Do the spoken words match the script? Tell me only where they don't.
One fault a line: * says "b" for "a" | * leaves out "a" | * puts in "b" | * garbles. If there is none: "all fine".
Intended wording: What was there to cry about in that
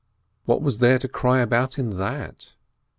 all fine